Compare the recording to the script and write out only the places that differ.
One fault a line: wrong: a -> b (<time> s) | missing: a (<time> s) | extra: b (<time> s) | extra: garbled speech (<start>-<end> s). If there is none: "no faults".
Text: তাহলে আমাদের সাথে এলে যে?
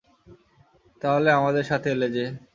no faults